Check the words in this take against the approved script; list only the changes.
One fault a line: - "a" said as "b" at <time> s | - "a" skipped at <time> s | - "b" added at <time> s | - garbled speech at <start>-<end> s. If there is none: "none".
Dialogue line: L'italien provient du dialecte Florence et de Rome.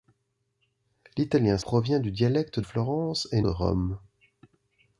none